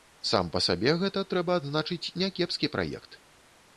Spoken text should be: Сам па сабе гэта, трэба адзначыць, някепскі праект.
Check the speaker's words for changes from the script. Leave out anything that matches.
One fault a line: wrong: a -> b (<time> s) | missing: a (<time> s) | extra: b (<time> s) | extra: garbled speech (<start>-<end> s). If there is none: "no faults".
no faults